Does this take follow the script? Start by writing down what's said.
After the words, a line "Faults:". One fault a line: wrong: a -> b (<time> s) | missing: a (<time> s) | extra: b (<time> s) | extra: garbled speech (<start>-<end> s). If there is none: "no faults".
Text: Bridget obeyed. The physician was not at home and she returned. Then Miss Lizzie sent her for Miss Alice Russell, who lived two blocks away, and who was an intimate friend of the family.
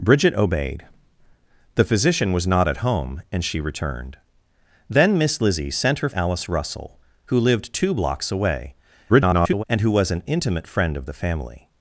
Bridget obeyed. The physician was not at home and she returned. Then Miss Lizzie sent her Alice Russell, who lived two blocks away, [garbled] and who was an intimate friend of the family.
Faults:
missing: for Miss (6.1 s)
extra: garbled speech (9.1-9.6 s)